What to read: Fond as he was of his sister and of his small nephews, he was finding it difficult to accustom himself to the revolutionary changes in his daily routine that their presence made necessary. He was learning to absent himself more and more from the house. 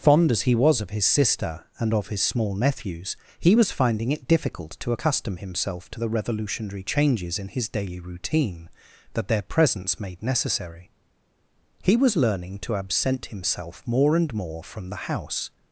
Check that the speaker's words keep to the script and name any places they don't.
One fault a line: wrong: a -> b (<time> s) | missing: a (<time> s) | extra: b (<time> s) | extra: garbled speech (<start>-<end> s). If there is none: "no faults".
no faults